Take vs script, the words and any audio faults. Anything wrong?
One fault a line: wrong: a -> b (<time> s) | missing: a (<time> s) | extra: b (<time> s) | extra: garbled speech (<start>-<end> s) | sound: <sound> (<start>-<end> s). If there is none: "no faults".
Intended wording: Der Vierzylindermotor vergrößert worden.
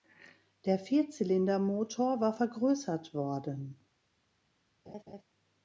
extra: war (2.2 s)
sound: laugh (4.9-5.2 s)